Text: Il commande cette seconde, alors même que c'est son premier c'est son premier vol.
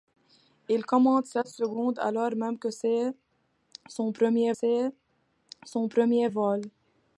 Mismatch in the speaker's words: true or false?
false